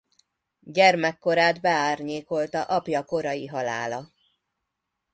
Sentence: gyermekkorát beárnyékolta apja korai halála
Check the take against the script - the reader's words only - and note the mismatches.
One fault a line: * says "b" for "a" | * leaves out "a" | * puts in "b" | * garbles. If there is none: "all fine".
all fine